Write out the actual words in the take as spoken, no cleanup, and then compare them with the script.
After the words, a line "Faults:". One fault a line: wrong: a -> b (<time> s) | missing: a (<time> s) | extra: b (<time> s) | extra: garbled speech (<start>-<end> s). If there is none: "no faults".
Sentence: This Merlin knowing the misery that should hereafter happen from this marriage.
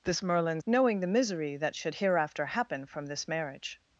This Merlin knowing the misery that should hereafter happen from this marriage.
Faults:
no faults